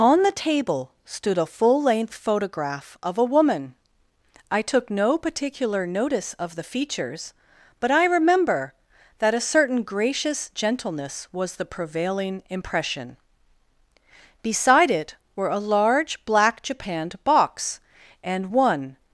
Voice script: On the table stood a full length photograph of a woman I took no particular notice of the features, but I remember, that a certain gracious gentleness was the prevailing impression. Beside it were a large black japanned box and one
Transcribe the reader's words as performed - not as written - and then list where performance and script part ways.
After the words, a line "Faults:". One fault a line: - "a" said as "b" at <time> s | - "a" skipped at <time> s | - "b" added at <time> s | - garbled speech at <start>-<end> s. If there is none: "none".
On the table stood a full length photograph of a woman I took no particular notice of the features, but I remember, that a certain gracious gentleness was the prevailing impression. Beside it were a large black japanned box and one
Faults:
none